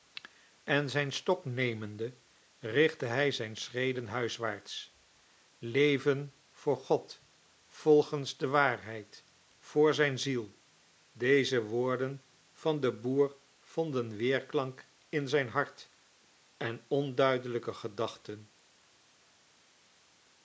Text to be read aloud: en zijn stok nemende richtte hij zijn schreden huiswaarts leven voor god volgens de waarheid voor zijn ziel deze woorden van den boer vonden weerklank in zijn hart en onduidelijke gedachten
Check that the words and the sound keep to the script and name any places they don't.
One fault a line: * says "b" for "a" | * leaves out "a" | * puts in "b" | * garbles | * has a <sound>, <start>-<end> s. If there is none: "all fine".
all fine